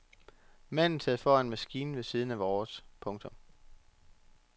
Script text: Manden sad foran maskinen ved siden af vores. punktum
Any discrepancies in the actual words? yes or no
no